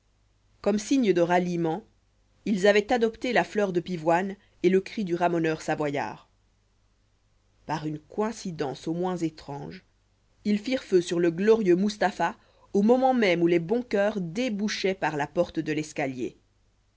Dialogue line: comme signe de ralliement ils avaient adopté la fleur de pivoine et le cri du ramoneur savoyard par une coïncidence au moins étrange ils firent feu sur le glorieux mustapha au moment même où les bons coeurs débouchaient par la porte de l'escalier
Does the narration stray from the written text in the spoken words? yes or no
no